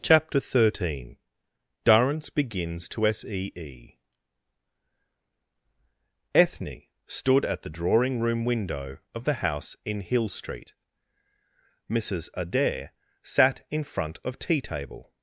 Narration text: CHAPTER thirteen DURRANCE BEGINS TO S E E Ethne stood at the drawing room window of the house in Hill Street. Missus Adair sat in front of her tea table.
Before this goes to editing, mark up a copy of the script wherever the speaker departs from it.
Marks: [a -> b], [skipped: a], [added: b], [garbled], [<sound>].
CHAPTER thirteen DURRANCE BEGINS TO S E E Ethne stood at the drawing room window of the house in Hill Street. Missus Adair sat in front of [skipped: her] tea table.